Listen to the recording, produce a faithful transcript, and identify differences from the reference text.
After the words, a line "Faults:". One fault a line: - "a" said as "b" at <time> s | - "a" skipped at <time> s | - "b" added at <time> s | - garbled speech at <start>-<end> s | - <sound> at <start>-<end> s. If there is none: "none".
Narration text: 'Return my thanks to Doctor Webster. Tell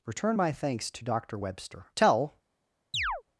'Return my thanks to Doctor Webster. Tell
Faults:
- chirp at 2.9-3.2 s